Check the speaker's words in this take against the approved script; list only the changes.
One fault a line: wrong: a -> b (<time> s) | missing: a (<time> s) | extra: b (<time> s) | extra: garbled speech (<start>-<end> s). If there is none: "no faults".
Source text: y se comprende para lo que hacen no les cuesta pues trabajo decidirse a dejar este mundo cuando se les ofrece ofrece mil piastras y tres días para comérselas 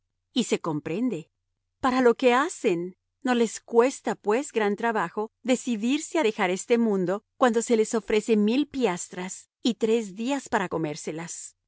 extra: gran (4.5 s)
missing: ofrece (8.4 s)